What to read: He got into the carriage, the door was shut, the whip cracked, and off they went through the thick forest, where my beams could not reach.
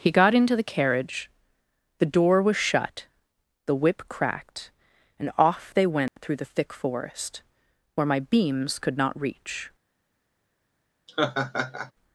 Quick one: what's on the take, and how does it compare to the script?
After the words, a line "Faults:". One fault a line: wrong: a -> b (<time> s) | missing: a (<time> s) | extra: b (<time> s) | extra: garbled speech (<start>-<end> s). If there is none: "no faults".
He got into the carriage, the door was shut, the whip cracked, and off they went through the thick forest, where my beams could not reach.
Faults:
no faults